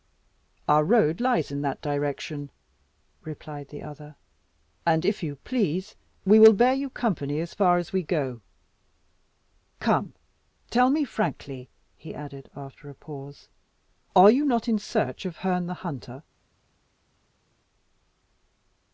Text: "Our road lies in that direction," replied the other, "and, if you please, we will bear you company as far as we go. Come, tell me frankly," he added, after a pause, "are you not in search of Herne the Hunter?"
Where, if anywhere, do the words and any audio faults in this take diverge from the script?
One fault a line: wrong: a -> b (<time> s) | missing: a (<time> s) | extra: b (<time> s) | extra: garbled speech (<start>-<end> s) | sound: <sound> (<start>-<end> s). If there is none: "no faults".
no faults